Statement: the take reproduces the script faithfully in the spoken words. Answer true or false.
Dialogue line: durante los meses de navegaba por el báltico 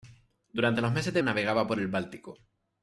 true